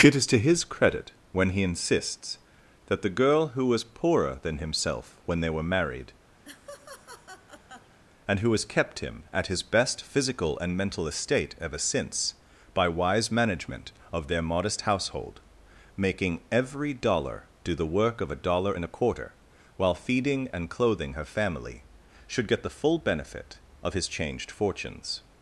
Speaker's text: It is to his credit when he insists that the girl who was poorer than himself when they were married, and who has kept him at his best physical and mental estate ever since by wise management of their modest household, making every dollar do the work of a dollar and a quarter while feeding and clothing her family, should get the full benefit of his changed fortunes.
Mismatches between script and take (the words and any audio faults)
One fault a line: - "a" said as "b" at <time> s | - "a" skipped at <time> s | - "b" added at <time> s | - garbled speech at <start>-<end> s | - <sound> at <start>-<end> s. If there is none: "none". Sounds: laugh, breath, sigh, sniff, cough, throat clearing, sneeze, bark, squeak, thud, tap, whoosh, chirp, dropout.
- laugh at 6.4-8.0 s